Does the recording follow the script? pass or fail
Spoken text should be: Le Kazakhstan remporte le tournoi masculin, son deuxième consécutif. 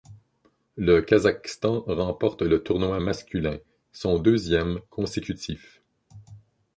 pass